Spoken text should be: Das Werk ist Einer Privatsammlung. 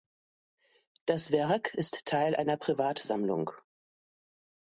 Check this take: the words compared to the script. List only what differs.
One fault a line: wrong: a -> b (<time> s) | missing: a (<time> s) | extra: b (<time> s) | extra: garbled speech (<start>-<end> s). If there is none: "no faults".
extra: Teil (2.1 s)